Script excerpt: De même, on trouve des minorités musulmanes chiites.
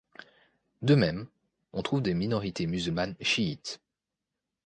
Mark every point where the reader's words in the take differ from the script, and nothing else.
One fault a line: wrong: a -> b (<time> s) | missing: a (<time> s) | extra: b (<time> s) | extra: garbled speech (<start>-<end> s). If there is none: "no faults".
no faults